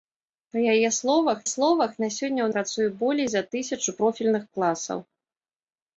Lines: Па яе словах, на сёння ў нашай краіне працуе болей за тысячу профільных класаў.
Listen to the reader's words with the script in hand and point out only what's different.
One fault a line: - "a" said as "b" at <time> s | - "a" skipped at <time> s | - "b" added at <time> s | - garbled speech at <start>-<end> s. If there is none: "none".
- "словах" added at 1.5 s
- "нашай краіне" skipped at 2.5 s